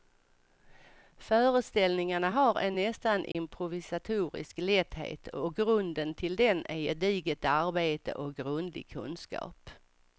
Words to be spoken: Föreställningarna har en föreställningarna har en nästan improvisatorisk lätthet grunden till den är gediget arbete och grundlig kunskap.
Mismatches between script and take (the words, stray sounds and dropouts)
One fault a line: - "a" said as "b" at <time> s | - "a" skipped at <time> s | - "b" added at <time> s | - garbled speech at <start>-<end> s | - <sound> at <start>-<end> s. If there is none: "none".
- "föreställningarna har en" skipped at 2.8 s
- dropout at 3.3-3.3 s
- "och" added at 5.3 s